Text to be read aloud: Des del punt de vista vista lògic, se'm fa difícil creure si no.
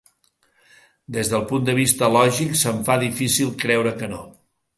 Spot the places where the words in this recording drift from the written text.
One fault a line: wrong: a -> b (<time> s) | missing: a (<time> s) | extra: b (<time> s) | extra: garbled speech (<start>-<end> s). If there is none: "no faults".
missing: vista (2.1 s)
wrong: si -> que (4.0 s)